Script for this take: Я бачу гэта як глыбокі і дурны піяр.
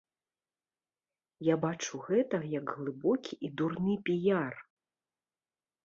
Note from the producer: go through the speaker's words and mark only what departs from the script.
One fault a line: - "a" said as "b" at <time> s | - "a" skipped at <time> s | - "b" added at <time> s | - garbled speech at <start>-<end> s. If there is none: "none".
none